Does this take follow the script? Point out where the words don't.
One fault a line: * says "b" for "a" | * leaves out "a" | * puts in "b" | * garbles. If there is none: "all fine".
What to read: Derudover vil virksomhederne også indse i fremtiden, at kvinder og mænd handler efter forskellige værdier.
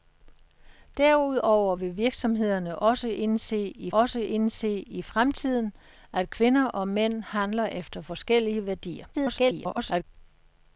* puts in "også indse i"
* garbles